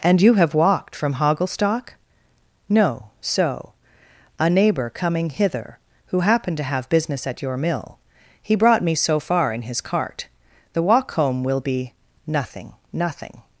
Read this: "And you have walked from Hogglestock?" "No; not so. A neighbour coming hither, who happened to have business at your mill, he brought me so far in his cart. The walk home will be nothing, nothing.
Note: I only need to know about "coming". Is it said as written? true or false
true